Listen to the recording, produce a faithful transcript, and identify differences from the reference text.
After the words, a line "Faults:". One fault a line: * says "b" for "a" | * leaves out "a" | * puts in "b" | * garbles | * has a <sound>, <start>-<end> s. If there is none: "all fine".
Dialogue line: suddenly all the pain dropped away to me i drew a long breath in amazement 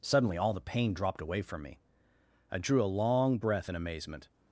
suddenly all the pain dropped away from me i drew a long breath in amazement
Faults:
* says "from" for "to"